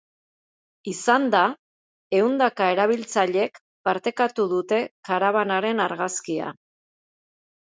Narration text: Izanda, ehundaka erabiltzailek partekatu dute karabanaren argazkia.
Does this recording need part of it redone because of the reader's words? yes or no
no